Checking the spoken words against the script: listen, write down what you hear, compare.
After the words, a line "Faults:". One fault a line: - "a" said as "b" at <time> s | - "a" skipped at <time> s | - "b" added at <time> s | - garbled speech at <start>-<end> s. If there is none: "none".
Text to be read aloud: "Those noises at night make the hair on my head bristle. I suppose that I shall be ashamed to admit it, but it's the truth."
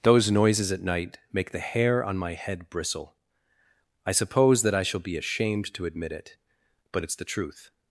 "Those noises at night make the hair on my head bristle. I suppose that I shall be ashamed to admit it, but it's the truth."
Faults:
none